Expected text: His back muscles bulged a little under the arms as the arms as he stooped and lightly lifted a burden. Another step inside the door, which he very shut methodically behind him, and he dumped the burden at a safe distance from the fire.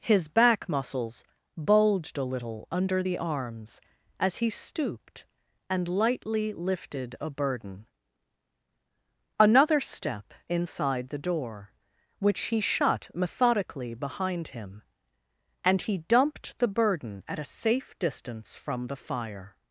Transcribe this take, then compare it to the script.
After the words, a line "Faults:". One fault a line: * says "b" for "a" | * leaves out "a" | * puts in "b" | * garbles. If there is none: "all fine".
His back muscles bulged a little under the arms as he stooped and lightly lifted a burden. Another step inside the door, which he shut methodically behind him, and he dumped the burden at a safe distance from the fire.
Faults:
* leaves out "the arms as"
* leaves out "very"